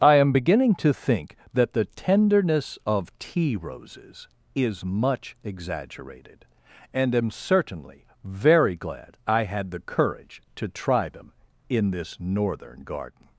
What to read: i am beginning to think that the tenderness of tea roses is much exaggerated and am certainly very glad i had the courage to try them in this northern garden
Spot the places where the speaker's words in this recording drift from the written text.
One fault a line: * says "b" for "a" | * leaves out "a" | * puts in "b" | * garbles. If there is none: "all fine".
all fine